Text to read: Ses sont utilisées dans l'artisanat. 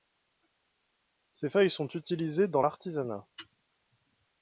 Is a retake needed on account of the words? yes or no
yes